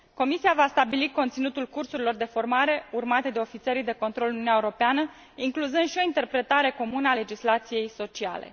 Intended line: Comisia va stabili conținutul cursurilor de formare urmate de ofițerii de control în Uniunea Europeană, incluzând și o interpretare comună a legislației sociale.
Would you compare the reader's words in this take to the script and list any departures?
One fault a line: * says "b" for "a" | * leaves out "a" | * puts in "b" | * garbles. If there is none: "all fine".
all fine